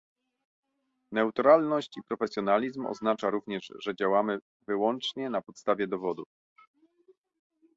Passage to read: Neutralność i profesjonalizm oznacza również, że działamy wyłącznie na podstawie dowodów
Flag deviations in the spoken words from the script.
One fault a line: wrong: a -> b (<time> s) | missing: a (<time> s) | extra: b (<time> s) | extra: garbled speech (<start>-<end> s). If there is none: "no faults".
no faults